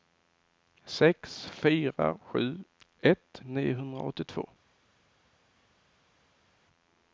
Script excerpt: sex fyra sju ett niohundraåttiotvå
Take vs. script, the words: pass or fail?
pass